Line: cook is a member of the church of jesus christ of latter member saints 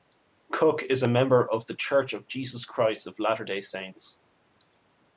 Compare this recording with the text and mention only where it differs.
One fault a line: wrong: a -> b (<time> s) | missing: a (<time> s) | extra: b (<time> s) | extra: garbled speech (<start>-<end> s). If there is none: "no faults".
wrong: member -> day (3.4 s)